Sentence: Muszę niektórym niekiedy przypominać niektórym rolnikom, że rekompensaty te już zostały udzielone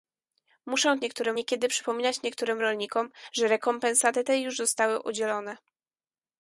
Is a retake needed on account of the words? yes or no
no